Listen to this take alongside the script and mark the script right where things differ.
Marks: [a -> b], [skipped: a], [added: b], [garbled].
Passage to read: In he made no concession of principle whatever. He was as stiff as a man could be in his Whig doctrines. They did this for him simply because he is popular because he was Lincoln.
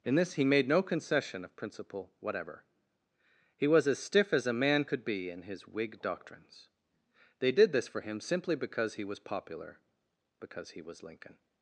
In [added: this] he made no concession of principle whatever. He was as stiff as a man could be in his Whig doctrines. They did this for him simply because he [is -> was] popular because he was Lincoln.